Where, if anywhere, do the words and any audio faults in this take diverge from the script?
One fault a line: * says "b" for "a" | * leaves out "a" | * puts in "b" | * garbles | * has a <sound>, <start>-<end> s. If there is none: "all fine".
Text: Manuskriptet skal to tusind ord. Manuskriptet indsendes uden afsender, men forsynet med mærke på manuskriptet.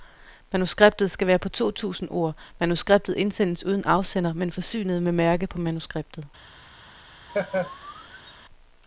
* puts in "være på"
* has a laugh, 7.3-8.3 s